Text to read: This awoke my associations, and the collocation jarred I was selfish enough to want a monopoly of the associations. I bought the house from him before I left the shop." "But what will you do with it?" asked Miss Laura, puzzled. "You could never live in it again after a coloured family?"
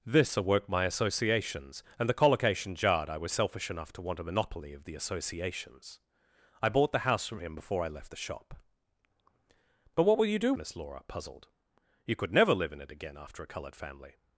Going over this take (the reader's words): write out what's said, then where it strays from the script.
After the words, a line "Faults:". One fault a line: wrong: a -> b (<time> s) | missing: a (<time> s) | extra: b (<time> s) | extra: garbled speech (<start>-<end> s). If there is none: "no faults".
This awoke my associations, and the collocation jarred I was selfish enough to want a monopoly of the associations. I bought the house from him before I left the shop." "But what will you do Miss Laura, puzzled. "You could never live in it again after a coloured family?"
Faults:
missing: with it asked (10.5 s)